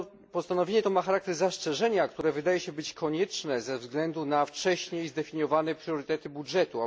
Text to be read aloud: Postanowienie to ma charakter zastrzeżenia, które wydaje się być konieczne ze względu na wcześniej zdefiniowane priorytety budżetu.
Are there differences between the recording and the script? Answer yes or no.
no